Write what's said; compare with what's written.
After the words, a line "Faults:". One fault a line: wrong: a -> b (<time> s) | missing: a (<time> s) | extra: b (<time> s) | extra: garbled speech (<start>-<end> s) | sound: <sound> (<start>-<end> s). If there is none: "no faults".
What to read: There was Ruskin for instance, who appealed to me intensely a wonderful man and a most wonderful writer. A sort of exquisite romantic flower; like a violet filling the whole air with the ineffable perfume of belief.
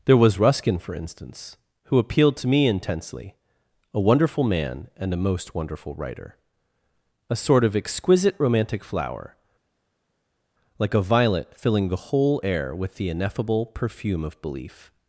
There was Ruskin for instance, who appealed to me intensely a wonderful man and a most wonderful writer. A sort of exquisite romantic flower; like a violet filling the whole air with the ineffable perfume of belief.
Faults:
no faults